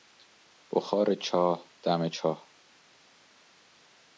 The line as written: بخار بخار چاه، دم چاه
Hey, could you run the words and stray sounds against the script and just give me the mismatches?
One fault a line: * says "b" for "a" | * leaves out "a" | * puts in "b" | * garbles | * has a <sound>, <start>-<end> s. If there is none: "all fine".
* leaves out "بخار"